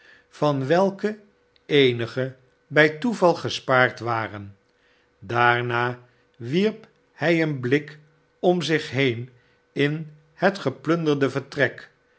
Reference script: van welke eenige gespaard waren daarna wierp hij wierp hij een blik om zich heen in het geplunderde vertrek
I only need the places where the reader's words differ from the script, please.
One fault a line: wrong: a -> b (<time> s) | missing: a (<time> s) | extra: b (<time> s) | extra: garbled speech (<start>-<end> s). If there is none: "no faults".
extra: bij toeval (2.7 s)
missing: wierp hij (7.4 s)